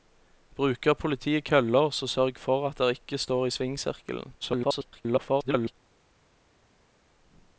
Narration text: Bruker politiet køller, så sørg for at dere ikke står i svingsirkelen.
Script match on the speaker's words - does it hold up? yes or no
no